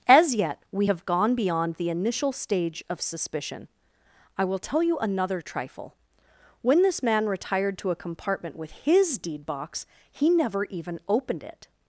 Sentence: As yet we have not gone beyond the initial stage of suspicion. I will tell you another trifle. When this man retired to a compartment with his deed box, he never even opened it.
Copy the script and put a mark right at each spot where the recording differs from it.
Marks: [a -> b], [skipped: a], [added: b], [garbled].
As yet we have [skipped: not] gone beyond the initial stage of suspicion. I will tell you another trifle. When this man retired to a compartment with his deed box, he never even opened it.